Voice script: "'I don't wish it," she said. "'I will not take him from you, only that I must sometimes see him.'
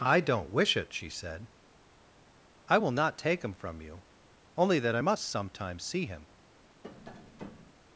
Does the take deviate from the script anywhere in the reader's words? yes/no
no